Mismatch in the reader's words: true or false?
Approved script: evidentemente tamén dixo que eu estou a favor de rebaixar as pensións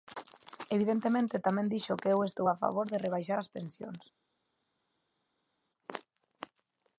false